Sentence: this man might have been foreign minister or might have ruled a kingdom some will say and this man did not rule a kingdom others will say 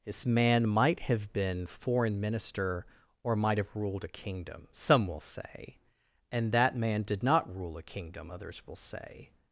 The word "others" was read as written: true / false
true